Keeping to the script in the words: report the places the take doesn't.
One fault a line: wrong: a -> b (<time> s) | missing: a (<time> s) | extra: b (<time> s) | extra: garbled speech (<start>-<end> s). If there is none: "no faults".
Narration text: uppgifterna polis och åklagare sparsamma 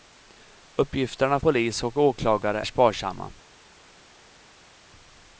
no faults